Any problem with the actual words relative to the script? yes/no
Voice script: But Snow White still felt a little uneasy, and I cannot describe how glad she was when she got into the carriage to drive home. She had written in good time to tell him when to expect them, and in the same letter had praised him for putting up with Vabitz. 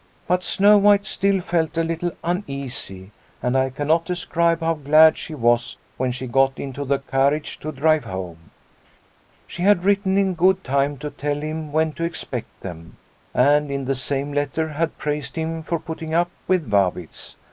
no